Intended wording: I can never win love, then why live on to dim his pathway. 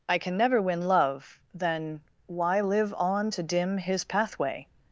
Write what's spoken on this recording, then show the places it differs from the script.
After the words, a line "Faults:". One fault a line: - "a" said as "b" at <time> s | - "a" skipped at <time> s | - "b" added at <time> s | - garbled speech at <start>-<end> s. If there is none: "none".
I can never win love, then why live on to dim his pathway.
Faults:
none